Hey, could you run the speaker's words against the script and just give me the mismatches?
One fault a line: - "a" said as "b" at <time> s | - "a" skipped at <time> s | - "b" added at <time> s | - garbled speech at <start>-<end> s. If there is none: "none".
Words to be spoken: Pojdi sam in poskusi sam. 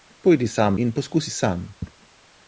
none